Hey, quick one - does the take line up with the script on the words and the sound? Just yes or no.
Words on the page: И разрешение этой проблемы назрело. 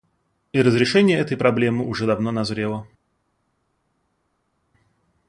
no